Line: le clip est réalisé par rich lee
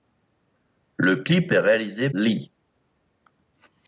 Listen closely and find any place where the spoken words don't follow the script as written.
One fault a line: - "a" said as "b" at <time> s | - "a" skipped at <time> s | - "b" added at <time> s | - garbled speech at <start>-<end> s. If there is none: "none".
- "par rich" skipped at 2.1 s